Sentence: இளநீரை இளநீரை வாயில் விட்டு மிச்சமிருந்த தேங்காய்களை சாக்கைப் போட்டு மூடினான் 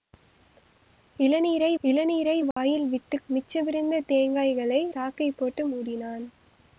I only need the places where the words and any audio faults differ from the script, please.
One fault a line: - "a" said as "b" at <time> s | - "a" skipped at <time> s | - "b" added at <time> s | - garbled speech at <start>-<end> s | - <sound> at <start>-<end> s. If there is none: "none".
- dropout at 2.5-2.6 s